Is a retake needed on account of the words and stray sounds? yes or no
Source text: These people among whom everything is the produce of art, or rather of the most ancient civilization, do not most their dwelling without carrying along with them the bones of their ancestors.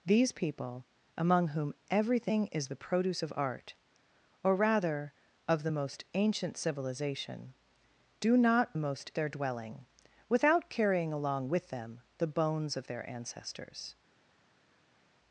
no